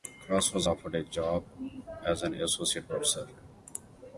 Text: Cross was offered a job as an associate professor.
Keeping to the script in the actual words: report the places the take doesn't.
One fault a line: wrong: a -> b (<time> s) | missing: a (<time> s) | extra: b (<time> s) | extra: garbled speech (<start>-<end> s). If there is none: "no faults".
no faults